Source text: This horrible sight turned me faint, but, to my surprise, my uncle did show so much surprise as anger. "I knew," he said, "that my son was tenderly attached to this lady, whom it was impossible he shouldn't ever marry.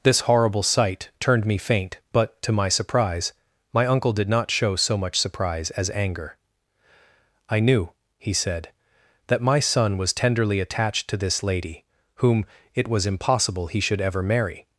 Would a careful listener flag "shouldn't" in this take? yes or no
yes